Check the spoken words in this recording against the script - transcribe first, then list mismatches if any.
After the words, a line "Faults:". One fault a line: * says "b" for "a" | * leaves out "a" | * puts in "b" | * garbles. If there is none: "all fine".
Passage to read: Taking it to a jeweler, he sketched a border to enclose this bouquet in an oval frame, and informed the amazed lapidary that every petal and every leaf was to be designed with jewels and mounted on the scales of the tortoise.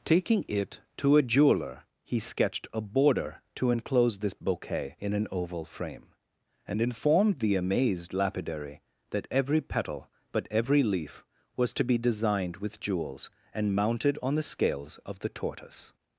Taking it to a jeweler, he sketched a border to enclose this bouquet in an oval frame, and informed the amazed lapidary that every petal but every leaf was to be designed with jewels and mounted on the scales of the tortoise.
Faults:
* says "but" for "and"